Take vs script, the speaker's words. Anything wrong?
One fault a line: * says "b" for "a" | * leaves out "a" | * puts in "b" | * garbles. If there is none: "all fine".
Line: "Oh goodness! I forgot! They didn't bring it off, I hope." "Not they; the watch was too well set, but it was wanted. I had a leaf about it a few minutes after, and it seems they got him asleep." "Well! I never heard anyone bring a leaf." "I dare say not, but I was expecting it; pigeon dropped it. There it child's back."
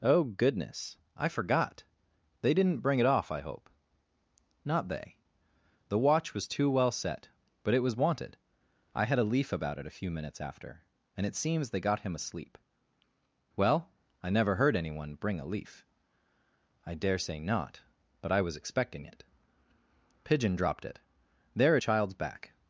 all fine